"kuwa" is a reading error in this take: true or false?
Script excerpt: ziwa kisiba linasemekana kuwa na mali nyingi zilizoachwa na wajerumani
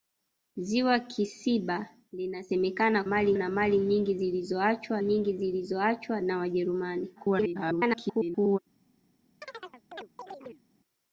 true